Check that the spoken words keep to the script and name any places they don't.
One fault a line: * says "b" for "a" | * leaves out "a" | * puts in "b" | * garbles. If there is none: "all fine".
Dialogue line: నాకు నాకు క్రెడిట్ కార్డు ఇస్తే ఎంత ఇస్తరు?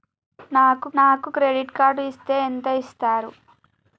all fine